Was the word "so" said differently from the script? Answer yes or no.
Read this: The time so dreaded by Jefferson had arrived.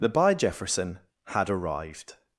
yes